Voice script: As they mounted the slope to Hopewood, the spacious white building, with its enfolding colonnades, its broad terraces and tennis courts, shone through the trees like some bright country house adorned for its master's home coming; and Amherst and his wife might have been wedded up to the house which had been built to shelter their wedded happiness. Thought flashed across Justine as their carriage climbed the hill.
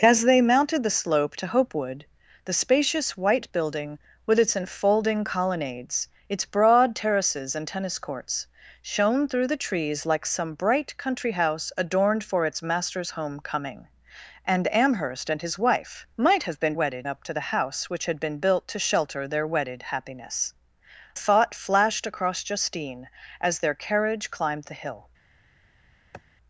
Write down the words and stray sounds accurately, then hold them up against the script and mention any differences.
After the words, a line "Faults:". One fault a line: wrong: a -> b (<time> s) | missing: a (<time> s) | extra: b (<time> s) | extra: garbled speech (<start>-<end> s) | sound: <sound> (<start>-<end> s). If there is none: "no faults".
As they mounted the slope to Hopewood, the spacious white building, with its enfolding colonnades, its broad terraces and tennis courts, shone through the trees like some bright country house adorned for its master's home coming; and Amherst and his wife might have been wedded up to the house which had been built to shelter their wedded happiness. Thought flashed across Justine as their carriage climbed the hill.
Faults:
sound: sniff (26.1-26.2 s)